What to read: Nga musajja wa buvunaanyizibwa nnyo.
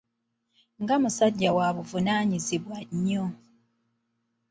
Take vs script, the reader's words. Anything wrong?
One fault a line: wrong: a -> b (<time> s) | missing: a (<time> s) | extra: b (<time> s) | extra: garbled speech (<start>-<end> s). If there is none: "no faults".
no faults